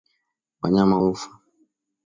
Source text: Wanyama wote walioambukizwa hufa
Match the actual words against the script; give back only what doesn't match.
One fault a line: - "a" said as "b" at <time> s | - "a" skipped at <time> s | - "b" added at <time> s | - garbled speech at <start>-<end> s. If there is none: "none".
- "wote walioambukizwa" skipped at 1.0 s